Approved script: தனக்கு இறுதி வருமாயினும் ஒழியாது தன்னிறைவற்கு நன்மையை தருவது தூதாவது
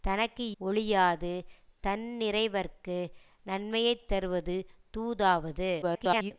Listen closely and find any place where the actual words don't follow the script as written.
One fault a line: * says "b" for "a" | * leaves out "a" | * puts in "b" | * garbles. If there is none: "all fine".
* leaves out "இறுதி வருமாயினும்"
* garbles